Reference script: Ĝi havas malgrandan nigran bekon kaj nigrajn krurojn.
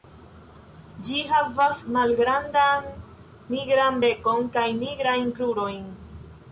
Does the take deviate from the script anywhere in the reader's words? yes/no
no